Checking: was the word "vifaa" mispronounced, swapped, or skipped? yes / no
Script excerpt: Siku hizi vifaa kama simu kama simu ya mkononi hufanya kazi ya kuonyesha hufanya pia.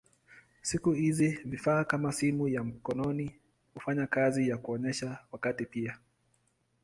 no